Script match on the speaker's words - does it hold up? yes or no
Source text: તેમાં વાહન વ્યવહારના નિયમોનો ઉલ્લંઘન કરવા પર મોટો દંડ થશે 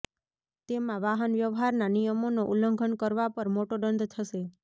yes